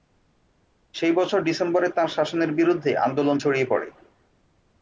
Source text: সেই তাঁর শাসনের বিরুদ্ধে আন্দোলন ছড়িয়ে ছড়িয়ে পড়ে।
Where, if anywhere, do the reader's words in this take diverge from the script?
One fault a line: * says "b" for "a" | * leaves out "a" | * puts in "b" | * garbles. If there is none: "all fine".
* puts in "বছর ডিসেম্বরে"
* leaves out "ছড়িয়ে"